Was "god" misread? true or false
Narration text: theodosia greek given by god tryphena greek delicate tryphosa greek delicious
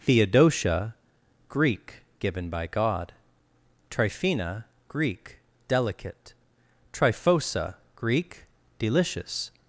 false